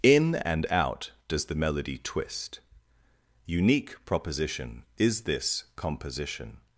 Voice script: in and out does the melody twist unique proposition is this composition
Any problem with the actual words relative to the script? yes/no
no